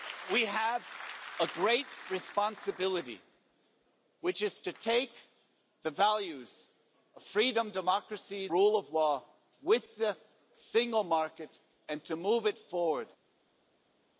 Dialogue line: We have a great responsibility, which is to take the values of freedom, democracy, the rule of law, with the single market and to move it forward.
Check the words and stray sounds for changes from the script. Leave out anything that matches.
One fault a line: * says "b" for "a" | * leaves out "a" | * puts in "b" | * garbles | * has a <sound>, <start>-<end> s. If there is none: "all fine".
* leaves out "the"